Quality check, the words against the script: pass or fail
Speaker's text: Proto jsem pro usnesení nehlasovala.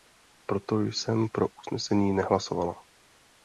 pass